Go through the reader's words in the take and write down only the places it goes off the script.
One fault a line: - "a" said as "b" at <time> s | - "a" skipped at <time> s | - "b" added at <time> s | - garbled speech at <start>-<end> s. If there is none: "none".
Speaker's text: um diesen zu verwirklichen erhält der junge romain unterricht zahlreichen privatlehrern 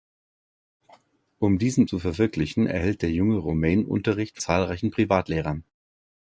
none